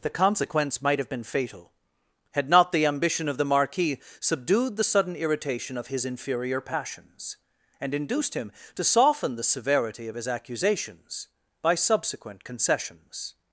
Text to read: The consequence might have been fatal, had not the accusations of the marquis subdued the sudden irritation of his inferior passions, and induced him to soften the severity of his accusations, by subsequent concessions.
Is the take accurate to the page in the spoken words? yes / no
no